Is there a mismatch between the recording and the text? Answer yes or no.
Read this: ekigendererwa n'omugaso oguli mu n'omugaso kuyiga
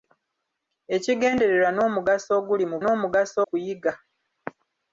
no